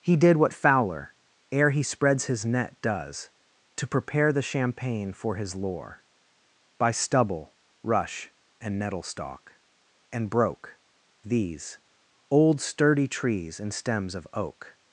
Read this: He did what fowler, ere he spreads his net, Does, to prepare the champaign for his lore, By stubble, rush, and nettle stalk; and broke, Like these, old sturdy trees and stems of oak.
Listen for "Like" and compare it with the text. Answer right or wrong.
wrong